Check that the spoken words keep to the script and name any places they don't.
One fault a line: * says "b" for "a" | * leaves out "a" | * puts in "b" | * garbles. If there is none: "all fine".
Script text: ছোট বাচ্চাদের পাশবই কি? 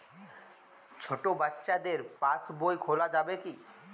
* puts in "খোলা যাবে"